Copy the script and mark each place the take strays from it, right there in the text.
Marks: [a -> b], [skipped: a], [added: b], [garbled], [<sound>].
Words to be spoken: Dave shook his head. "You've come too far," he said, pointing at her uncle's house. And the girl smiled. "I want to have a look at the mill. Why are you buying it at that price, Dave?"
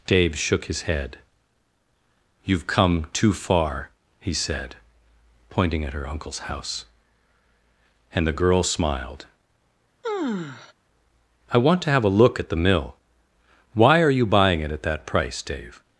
Dave shook his head. "You've come too far," he said, pointing at her uncle's house. And the girl smiled. [sigh] "I want to have a look at the mill. Why are you buying it at that price, Dave?"